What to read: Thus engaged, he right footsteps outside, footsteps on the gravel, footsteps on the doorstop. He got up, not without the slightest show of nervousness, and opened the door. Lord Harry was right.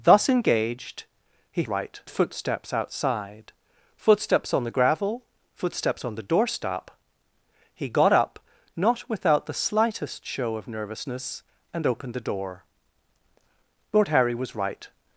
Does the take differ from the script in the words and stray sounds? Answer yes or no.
no